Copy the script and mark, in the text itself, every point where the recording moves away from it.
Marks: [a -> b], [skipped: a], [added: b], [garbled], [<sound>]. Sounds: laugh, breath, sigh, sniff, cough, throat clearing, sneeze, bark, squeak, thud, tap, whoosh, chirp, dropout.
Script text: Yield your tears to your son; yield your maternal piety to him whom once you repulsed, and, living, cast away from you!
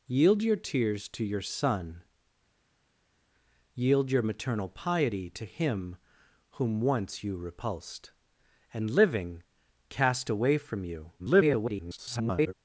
Yield your tears to your son; yield your maternal piety to him whom once you repulsed, and, living, cast away from you! [garbled]